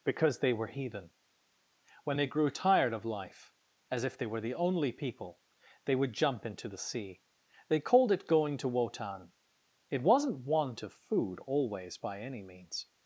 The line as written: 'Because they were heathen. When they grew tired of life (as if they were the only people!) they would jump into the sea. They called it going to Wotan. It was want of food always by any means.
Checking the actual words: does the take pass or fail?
fail